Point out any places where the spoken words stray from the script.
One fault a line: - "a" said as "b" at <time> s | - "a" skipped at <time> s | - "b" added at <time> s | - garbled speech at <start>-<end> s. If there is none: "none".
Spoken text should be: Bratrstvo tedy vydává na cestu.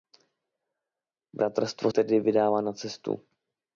none